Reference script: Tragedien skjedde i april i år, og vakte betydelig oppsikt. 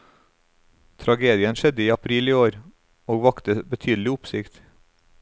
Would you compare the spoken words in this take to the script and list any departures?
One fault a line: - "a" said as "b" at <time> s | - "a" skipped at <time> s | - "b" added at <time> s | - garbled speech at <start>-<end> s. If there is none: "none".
none